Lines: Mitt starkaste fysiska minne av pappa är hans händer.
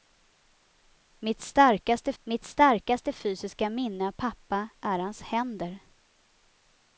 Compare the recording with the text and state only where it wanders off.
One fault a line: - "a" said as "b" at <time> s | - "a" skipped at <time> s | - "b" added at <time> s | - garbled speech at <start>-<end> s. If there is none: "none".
- "mitt starkaste" added at 2.2 s